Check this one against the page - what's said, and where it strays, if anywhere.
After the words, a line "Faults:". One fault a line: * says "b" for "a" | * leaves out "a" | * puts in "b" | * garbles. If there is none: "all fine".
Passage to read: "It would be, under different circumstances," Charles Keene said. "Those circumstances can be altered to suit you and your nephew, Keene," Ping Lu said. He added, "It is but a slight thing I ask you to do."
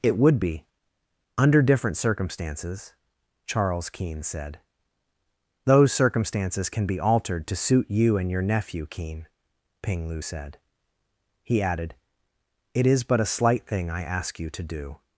"It would be, under different circumstances," Charles Keene said. "Those circumstances can be altered to suit you and your nephew, Keene," Ping Lu said. He added, "It is but a slight thing I ask you to do."
Faults:
all fine